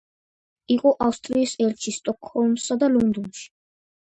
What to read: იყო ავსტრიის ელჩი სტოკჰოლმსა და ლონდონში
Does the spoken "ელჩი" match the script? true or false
true